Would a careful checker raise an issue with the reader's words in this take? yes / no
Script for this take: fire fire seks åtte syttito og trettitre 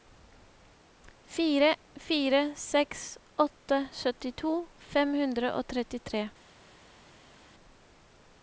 yes